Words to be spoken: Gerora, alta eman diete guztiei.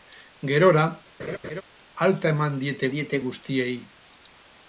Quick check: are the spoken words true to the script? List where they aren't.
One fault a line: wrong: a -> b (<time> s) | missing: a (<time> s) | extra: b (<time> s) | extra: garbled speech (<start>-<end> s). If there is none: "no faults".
extra: diete (3.0 s)